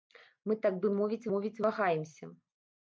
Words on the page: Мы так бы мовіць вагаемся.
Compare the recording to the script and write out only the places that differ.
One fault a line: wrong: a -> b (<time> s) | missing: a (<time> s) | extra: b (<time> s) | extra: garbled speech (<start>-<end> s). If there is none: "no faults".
extra: мовіць (1.3 s)